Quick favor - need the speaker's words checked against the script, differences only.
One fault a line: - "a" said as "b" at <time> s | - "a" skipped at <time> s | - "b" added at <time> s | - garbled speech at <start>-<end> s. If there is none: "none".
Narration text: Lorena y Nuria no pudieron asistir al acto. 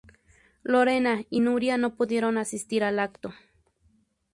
none